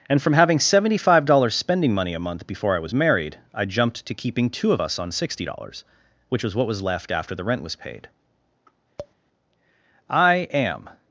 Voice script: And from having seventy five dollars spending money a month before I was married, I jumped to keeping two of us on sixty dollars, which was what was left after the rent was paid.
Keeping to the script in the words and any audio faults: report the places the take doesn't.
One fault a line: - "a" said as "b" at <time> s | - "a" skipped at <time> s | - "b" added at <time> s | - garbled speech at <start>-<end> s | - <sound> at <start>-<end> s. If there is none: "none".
- tap at 9.0-9.1 s
- "I am" added at 10.1 s